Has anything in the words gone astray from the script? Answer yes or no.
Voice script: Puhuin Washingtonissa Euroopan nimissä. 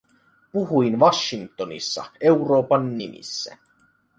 no